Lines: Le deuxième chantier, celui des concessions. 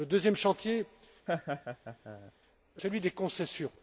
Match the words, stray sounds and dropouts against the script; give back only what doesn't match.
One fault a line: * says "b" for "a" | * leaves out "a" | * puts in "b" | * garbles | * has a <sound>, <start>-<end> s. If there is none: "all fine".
* has a laugh, 1.3-2.3 s